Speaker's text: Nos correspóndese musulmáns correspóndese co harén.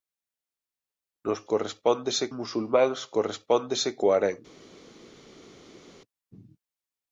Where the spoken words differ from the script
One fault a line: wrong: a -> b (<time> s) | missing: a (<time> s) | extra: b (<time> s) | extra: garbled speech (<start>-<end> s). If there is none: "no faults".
no faults